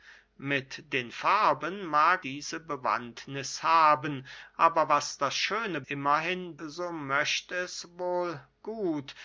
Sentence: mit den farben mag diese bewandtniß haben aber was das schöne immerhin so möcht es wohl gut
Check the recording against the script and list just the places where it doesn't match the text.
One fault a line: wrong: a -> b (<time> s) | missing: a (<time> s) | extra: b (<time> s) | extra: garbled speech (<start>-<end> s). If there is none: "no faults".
no faults